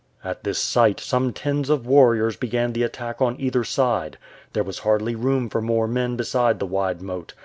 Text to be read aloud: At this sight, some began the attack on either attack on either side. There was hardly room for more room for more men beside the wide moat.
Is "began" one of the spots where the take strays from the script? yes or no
yes